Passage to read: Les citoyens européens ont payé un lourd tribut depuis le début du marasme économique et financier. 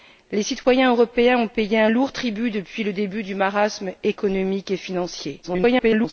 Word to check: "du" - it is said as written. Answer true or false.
true